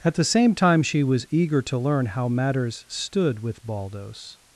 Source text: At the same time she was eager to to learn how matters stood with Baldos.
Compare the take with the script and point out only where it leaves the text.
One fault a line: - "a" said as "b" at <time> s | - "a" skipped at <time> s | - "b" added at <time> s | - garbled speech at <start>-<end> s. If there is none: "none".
- "to" skipped at 1.8 s